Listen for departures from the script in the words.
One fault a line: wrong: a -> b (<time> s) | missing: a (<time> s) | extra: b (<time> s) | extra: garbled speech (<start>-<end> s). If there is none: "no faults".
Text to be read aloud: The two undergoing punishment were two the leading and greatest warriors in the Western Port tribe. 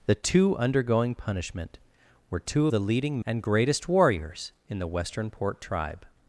no faults